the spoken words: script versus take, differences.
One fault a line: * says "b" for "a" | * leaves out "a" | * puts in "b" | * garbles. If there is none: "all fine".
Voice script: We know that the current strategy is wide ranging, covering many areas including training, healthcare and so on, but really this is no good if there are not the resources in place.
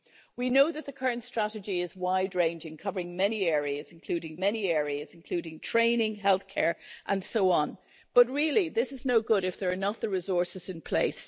* puts in "many areas including"